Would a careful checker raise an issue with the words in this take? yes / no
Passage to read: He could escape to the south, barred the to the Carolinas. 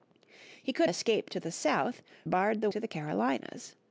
no